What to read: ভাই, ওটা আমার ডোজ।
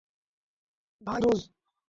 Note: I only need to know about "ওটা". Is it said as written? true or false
false